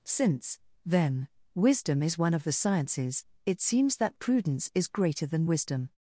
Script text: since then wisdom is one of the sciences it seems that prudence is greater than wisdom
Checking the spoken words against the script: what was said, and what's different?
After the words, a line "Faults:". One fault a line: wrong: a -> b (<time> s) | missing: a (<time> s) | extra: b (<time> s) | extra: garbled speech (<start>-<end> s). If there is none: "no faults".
since then wisdom is one of the sciences it seems that prudence is greater than wisdom
Faults:
no faults